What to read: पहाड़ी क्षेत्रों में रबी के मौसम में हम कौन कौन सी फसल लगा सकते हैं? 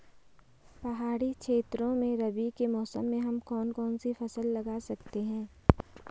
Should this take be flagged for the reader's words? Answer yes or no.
no